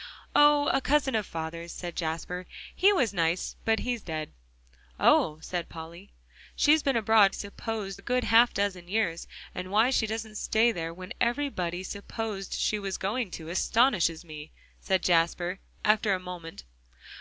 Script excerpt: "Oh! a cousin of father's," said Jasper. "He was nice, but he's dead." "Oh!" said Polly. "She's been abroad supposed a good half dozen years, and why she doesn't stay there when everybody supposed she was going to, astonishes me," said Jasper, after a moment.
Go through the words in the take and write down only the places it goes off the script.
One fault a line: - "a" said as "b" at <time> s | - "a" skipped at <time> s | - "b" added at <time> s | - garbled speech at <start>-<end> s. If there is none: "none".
none